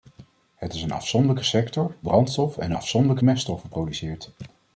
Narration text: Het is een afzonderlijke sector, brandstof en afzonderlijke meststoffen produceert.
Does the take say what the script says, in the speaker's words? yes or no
yes